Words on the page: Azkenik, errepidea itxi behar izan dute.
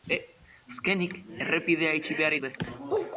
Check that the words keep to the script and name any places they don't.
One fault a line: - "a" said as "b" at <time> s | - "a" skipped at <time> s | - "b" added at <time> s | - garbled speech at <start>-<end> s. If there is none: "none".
- "izan" skipped at 2.4 s